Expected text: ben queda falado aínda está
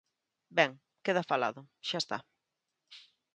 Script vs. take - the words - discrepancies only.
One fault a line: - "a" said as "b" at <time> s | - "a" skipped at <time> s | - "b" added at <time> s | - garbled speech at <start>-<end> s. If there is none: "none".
- "aínda" said as "xa" at 1.8 s